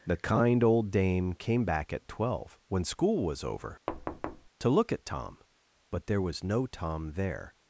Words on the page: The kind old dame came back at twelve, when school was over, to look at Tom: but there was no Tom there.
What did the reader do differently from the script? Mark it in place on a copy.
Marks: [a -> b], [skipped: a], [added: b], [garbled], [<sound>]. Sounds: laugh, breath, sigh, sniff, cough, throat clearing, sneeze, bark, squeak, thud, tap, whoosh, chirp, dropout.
The kind old dame came back at twelve, when school was over, [thud] to look at Tom: but there was no Tom there.